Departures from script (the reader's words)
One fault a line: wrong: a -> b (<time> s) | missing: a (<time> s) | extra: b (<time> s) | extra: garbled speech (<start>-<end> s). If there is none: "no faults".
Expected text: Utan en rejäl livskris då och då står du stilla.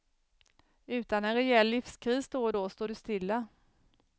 no faults